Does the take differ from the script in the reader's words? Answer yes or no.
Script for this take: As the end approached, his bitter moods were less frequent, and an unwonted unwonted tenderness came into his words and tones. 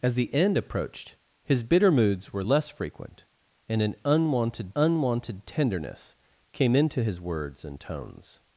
no